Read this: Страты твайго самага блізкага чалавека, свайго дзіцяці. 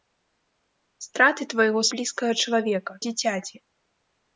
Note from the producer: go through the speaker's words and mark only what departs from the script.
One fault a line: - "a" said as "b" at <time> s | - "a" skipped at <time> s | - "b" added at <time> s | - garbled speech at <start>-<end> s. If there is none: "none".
- "самага" skipped at 1.9 s
- "свайго" skipped at 2.9 s